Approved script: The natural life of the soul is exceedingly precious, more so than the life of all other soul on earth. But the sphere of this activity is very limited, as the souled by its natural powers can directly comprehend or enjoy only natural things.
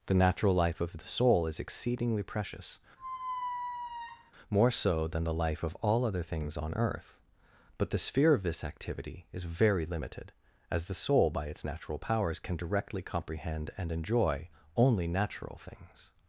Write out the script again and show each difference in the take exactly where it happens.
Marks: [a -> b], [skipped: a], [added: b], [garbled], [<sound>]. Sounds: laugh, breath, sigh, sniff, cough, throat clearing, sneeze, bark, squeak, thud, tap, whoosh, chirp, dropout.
The natural life of the soul is exceedingly precious, [squeak] more so than the life of all other [soul -> things] on earth. But the sphere of this activity is very limited, as the [souled -> soul] by its natural powers can directly comprehend [or -> and] enjoy only natural things.